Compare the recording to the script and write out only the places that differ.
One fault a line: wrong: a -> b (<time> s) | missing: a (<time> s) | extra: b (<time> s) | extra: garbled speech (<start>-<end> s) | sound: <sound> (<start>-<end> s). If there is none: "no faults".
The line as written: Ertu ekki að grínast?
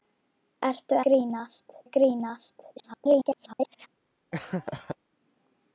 wrong: ekki -> grínast (1.1 s)
extra: garbled speech (2.8-3.9 s)
sound: laugh (4.3-5.0 s)